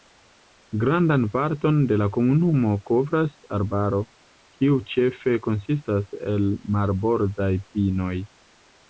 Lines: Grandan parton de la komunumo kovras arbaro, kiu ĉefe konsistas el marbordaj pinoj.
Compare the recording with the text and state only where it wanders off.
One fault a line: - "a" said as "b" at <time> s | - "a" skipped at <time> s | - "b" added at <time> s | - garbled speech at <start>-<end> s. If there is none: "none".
none